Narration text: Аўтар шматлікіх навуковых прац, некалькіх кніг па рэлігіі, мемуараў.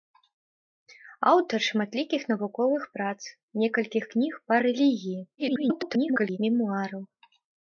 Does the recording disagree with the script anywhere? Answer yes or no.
yes